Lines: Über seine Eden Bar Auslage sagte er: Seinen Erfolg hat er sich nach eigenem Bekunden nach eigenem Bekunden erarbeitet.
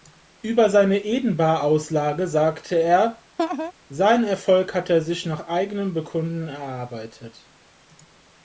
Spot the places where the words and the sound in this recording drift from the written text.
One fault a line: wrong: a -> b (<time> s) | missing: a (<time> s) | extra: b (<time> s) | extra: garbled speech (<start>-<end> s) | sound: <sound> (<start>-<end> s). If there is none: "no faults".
sound: laugh (3.4-3.7 s)
missing: nach eigenem Bekunden (6.5 s)